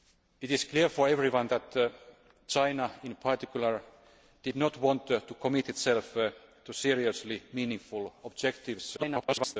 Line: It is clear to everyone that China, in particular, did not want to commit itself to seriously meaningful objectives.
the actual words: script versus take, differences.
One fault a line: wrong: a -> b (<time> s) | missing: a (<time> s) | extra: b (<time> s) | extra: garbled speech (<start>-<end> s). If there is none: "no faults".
extra: garbled speech (9.0-9.6 s)